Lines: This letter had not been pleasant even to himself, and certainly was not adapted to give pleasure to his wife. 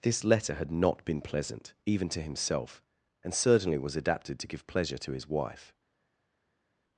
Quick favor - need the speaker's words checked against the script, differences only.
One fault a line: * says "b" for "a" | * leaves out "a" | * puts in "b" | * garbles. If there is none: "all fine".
* leaves out "not"